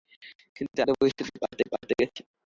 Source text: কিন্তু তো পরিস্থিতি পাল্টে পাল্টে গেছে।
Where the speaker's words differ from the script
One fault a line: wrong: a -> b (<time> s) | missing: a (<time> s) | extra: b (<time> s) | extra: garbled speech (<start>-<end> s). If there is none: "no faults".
no faults